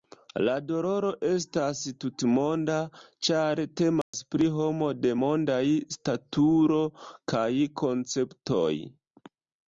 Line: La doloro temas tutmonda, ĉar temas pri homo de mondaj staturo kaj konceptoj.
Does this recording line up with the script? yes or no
no